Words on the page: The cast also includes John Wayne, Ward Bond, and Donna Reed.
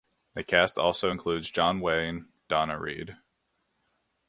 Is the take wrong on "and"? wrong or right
wrong